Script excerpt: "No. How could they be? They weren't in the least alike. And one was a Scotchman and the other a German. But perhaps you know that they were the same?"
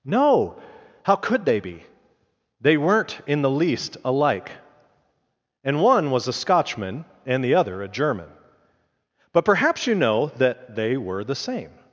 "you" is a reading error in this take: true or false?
false